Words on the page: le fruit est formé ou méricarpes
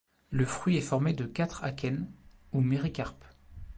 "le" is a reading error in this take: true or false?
false